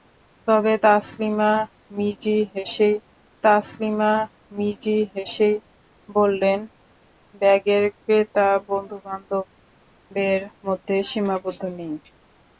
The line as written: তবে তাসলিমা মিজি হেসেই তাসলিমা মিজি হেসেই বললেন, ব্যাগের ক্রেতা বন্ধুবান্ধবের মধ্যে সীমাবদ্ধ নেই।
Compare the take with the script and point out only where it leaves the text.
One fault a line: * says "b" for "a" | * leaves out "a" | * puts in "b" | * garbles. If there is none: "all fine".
all fine